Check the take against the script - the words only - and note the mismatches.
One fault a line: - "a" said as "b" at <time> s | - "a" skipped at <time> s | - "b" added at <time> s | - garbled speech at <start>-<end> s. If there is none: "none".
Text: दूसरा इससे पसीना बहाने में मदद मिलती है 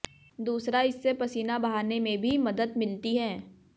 - "भी" added at 2.2 s